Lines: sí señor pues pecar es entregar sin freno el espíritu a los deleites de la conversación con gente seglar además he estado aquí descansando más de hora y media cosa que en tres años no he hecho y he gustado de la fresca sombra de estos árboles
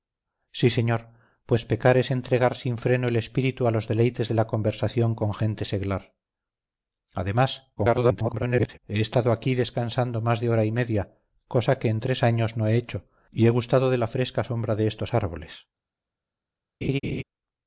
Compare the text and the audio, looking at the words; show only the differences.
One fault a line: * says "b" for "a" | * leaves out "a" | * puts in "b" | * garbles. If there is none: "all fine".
* garbles